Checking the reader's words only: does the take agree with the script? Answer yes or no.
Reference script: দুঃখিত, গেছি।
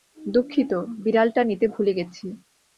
no